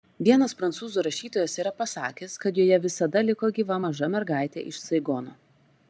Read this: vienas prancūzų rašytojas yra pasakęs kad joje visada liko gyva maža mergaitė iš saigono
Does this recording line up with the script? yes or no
yes